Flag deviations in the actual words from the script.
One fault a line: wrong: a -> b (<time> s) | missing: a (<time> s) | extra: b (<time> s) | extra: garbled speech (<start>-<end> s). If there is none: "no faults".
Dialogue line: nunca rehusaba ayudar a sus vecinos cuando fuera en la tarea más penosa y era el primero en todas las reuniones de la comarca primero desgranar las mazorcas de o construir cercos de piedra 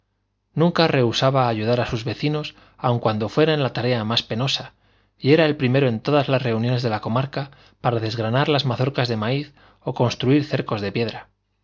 extra: aun (2.8 s)
wrong: primero -> para (7.8 s)
extra: maíz (9.2 s)